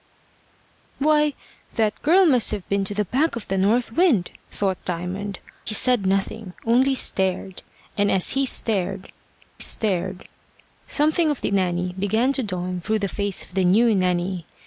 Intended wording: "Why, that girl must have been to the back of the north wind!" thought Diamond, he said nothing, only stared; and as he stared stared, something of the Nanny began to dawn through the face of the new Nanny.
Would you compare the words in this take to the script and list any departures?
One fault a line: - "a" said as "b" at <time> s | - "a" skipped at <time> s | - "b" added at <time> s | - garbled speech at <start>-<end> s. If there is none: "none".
none